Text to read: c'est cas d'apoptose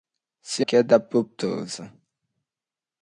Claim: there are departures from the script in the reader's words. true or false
false